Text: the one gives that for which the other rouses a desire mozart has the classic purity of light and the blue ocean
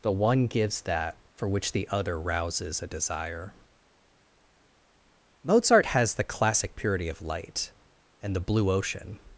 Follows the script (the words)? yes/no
yes